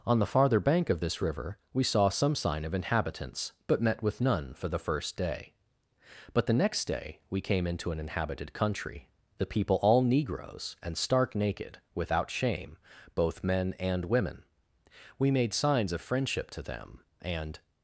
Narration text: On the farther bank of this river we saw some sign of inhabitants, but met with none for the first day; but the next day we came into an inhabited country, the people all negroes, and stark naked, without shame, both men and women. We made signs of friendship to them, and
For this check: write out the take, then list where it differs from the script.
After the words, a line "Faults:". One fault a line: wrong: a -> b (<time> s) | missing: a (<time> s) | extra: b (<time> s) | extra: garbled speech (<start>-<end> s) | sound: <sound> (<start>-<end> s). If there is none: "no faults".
On the farther bank of this river we saw some sign of inhabitants, but met with none for the first day; but the next day we came into an inhabited country, the people all negroes, and stark naked, without shame, both men and women. We made signs of friendship to them, and
Faults:
no faults